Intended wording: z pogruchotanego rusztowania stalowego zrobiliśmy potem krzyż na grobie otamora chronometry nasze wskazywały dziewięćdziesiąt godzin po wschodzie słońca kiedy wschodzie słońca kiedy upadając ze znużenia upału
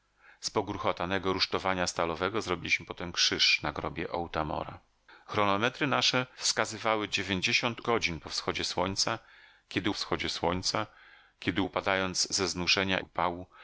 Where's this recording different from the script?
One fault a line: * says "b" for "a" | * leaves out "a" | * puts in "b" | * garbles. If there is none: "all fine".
all fine